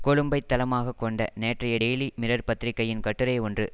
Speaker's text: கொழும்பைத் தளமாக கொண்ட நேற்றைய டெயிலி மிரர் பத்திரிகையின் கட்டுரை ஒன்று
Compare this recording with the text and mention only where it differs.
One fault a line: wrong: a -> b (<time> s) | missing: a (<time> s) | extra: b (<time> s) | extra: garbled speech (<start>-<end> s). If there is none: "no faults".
no faults